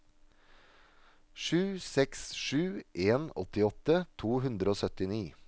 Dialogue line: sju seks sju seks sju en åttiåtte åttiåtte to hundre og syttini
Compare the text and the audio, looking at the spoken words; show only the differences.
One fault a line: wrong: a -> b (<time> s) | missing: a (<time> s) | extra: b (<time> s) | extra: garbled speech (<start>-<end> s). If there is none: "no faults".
missing: seks sju (2.8 s)
missing: åttiåtte (4.1 s)